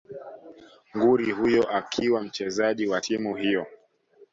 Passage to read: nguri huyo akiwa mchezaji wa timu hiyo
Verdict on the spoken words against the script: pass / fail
pass